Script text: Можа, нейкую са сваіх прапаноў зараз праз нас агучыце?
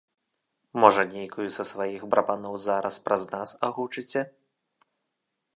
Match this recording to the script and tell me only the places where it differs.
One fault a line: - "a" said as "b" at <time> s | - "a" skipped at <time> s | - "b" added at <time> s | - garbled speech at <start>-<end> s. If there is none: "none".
none